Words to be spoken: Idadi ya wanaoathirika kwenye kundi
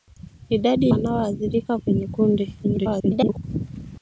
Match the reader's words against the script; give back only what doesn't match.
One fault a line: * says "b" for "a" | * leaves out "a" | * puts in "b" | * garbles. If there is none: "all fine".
* leaves out "ya"
* garbles